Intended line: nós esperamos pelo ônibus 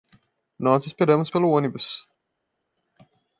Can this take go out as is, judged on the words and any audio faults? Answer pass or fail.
pass